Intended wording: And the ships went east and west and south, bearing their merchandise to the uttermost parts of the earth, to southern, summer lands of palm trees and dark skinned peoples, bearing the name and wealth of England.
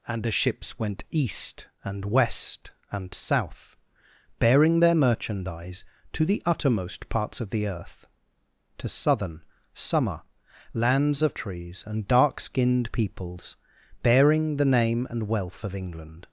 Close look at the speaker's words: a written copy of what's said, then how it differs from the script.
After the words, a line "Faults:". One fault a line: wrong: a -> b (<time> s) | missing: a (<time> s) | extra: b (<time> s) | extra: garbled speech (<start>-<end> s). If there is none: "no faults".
And the ships went east and west and south, bearing their merchandise to the uttermost parts of the earth, to southern, summer lands of trees and dark skinned peoples, bearing the name and wealth of England.
Faults:
missing: palm (11.4 s)